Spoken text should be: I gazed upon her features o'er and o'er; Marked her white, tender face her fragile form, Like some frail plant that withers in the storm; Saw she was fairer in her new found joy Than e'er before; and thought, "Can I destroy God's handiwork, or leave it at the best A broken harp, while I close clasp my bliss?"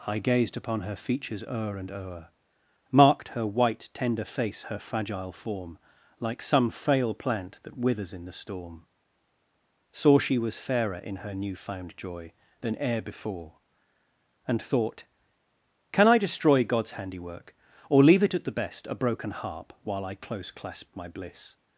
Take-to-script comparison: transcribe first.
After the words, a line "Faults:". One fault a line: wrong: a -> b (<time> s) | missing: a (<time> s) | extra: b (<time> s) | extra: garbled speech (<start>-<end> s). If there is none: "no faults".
I gazed upon her features o'er and o'er; Marked her white, tender face her fragile form, Like some frail plant that withers in the storm; Saw she was fairer in her new found joy Than e'er before; and thought, "Can I destroy God's handiwork, or leave it at the best A broken harp, while I close clasp my bliss?"
Faults:
no faults